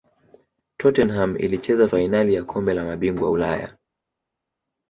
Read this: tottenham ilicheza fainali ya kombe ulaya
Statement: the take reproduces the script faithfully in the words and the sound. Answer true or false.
false